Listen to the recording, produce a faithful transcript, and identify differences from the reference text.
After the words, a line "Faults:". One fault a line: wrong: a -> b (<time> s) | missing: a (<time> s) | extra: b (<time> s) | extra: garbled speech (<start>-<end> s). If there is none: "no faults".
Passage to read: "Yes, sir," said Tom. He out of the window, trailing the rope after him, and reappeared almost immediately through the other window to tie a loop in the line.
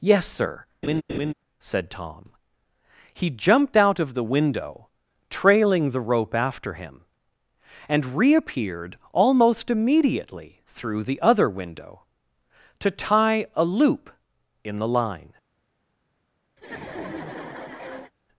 "Yes, sir," said Tom. He jumped out of the window, trailing the rope after him, and reappeared almost immediately through the other window to tie a loop in the line.
Faults:
extra: jumped (3.3 s)